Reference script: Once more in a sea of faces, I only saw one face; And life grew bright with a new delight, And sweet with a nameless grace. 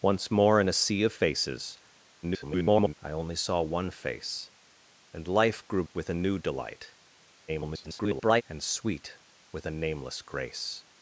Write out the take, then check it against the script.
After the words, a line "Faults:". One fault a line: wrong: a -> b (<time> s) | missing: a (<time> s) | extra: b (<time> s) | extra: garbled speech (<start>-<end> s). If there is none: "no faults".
Once more in a sea of faces, [garbled] I only saw one face; And life grew with a new delight, [garbled] And sweet with a nameless grace.
Faults:
extra: garbled speech (2.2-2.9 s)
missing: bright (5.8 s)
extra: garbled speech (7.5-8.4 s)